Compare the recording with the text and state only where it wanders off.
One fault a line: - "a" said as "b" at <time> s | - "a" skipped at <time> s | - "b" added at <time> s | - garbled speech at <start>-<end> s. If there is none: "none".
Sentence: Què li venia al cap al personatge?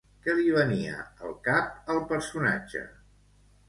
none